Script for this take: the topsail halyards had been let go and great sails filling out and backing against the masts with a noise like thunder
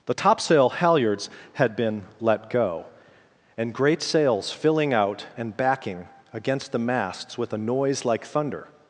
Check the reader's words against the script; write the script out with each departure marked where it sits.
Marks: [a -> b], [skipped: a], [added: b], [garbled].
the topsail halyards had been let go and great sails filling out and backing against the masts with a noise like thunder